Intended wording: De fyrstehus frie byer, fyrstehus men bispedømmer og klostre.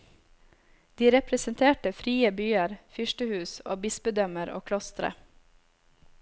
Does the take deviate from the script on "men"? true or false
true